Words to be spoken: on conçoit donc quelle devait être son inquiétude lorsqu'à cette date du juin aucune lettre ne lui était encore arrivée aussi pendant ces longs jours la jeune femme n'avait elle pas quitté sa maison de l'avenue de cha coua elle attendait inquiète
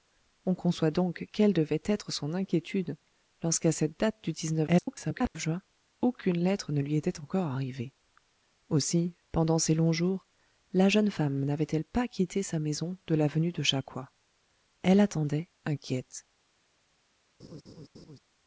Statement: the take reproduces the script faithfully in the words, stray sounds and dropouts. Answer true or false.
false